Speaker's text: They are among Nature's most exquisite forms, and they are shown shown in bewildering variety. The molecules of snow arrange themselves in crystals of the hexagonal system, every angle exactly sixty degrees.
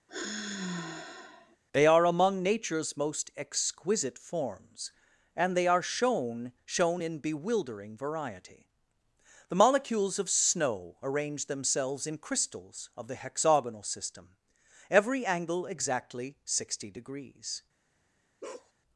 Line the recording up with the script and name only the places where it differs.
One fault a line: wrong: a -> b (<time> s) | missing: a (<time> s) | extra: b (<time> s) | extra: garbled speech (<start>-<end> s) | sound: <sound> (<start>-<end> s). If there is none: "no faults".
sound: sigh (0.1-1.6 s)
sound: bark (18.4-18.7 s)